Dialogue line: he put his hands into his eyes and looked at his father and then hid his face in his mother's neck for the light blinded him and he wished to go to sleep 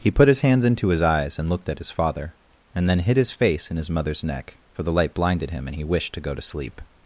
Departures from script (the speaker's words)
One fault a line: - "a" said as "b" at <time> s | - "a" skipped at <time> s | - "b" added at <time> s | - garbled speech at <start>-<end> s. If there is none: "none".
none